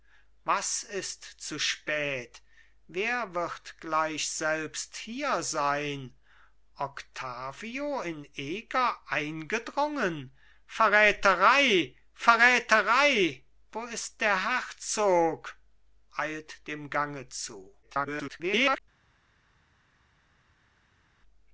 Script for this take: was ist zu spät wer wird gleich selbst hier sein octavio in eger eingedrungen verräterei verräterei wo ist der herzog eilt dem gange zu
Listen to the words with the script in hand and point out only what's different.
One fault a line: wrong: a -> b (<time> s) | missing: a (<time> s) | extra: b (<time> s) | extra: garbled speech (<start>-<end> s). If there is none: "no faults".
extra: garbled speech (17.8-18.8 s)